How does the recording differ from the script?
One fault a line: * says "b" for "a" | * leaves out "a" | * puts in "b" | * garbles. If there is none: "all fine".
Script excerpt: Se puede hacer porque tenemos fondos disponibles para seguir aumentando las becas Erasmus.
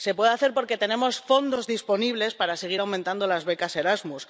all fine